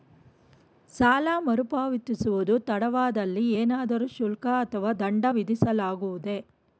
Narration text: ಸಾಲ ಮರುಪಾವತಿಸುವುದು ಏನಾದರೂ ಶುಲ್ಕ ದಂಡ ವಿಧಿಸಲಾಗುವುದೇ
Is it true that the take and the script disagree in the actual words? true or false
true